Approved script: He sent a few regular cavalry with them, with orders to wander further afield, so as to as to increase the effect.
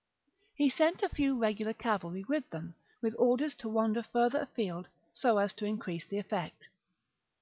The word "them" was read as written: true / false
true